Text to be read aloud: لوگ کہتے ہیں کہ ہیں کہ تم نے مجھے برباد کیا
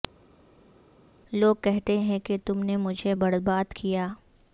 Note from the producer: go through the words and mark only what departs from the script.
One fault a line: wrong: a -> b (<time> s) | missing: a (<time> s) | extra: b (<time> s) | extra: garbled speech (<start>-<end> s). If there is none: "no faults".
missing: ہیں کہ (2.4 s)